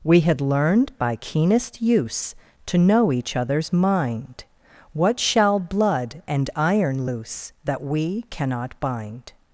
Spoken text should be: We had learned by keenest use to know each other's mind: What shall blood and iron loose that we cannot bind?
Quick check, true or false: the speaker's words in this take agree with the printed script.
true